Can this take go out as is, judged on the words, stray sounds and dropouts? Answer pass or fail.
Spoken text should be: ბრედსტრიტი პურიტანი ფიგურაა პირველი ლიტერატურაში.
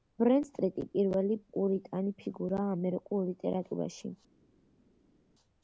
fail